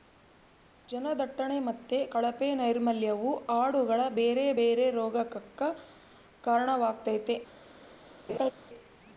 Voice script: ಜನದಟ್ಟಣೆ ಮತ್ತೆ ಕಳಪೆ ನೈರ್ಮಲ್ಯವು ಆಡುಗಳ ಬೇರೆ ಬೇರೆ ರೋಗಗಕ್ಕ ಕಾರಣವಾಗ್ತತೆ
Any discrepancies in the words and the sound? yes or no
yes